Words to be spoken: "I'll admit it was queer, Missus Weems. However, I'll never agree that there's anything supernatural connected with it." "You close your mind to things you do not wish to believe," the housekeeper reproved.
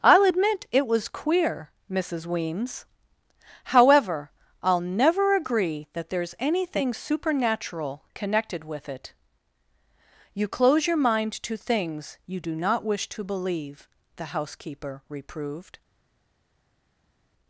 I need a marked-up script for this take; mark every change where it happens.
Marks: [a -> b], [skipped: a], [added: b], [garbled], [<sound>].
"I'll admit it was queer, Missus Weems. However, I'll never agree that there's anything supernatural connected with it." "You close your mind to things you do not wish to believe," the housekeeper reproved.